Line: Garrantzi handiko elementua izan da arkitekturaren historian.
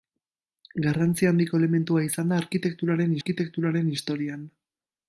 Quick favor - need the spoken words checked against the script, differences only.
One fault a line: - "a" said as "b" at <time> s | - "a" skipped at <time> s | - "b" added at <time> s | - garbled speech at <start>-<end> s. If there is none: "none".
- "arkitekturaren" added at 3.2 s